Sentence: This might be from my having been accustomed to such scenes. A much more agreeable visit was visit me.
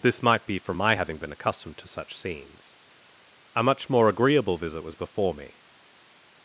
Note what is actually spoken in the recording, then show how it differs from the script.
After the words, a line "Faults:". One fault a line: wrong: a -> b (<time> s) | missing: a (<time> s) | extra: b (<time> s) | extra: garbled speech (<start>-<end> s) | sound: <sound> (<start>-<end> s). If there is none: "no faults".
This might be from my having been accustomed to such scenes. A much more agreeable visit was before me.
Faults:
wrong: visit -> before (5.0 s)